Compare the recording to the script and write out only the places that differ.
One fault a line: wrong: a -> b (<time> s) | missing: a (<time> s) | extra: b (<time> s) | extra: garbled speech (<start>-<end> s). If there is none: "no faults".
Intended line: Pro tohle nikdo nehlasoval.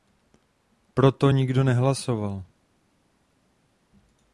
wrong: tohle -> to (1.1 s)